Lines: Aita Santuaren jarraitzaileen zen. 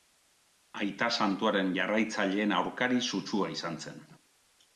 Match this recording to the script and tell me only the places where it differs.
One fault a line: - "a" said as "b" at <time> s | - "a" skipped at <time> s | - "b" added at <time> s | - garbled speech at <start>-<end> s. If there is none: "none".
- "aurkari sutsua izan" added at 2.6 s